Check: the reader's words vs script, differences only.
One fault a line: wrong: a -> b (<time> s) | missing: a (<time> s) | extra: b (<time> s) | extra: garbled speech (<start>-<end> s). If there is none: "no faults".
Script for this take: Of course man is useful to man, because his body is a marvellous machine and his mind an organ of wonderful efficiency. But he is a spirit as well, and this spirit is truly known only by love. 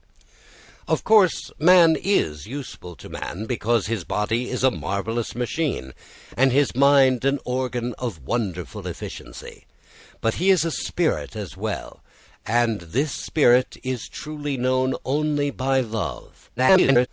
extra: garbled speech (16.6-17.1 s)